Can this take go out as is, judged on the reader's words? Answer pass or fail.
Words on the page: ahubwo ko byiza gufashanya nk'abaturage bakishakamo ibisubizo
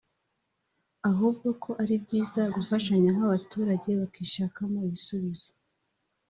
fail